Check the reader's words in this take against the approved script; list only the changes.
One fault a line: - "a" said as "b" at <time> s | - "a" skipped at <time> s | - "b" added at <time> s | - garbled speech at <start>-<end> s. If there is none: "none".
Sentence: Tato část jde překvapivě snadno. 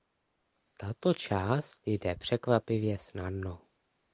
none